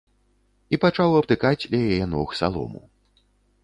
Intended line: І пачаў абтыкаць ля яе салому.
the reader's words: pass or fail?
fail